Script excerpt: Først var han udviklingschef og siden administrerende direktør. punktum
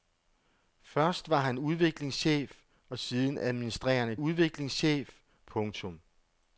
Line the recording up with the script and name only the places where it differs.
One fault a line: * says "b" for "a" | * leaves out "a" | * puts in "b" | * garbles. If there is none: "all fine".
* says "udviklingschef" for "direktør"